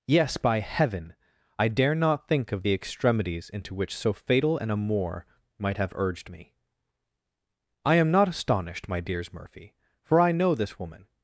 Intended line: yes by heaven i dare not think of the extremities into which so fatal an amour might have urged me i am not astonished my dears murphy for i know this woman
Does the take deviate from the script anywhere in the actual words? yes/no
no